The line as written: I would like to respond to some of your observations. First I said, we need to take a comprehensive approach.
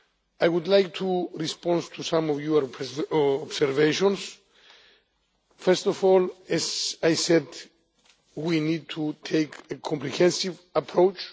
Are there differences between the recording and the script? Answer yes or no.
yes